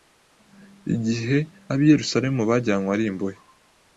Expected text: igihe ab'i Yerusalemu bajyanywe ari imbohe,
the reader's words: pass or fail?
pass